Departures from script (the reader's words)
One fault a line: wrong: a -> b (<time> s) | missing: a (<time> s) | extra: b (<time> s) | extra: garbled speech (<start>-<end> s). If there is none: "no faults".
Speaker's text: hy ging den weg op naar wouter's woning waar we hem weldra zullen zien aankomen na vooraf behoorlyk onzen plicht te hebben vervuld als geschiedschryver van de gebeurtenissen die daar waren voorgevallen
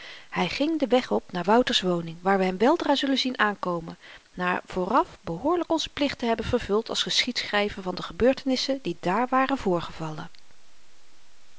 no faults